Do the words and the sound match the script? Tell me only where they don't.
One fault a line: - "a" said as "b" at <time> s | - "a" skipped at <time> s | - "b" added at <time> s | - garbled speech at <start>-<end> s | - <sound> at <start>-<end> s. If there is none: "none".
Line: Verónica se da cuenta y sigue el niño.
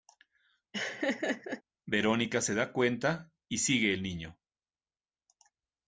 - laugh at 0.7-1.6 s